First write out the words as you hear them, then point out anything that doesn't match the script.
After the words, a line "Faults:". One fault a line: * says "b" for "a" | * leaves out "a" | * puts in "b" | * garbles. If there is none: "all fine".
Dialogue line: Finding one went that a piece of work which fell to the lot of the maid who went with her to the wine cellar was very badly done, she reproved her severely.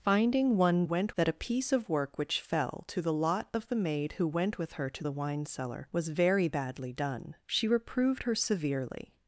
Finding one went that a piece of work which fell to the lot of the maid who went with her to the wine cellar was very badly done, she reproved her severely.
Faults:
all fine